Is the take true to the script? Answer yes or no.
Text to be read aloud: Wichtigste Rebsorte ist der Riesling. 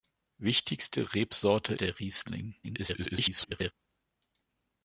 no